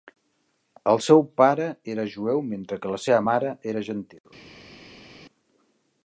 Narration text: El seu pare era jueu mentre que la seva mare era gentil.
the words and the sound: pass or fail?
pass